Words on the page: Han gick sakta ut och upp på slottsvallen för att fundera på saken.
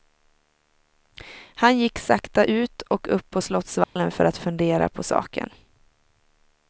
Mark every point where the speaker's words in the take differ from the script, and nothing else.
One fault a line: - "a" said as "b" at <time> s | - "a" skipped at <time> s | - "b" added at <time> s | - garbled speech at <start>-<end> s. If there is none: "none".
none